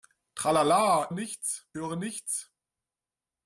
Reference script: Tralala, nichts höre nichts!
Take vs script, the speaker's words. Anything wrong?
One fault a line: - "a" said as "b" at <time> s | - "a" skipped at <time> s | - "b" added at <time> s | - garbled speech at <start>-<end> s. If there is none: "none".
none